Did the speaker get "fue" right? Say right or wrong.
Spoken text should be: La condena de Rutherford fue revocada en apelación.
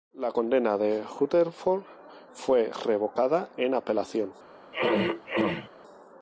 right